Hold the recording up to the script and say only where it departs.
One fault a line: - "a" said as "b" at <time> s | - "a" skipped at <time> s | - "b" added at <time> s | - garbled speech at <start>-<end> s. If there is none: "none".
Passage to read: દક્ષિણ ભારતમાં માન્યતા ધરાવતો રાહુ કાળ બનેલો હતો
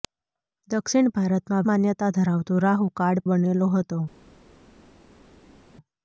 none